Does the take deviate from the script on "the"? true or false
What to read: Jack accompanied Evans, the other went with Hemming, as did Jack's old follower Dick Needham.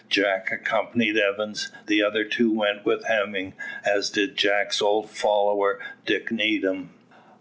false